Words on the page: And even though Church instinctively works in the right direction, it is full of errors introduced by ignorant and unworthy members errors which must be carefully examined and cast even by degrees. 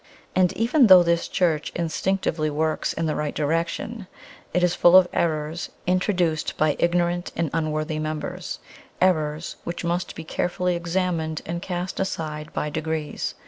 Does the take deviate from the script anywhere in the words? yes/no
yes